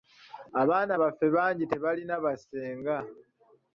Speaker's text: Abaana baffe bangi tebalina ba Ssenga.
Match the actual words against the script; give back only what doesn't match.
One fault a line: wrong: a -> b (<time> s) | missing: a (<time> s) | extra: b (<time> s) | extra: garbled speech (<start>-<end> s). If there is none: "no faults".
no faults